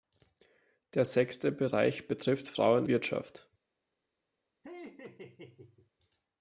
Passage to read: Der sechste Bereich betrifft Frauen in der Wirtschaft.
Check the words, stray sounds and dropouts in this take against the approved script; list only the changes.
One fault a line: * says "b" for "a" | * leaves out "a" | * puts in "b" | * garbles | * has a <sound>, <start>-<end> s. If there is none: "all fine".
* leaves out "in der"
* has a laugh, 4.6-5.9 s